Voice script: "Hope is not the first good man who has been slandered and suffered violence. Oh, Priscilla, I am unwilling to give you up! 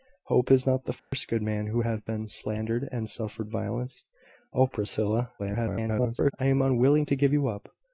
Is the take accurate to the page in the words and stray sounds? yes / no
no